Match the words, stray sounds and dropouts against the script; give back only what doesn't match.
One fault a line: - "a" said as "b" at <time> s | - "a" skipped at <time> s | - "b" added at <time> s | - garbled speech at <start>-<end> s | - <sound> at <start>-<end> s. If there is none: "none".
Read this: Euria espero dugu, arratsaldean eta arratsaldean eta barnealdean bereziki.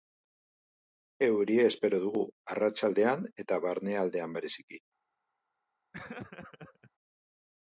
- "arratsaldean eta" skipped at 3.6 s
- laugh at 5.9-6.9 s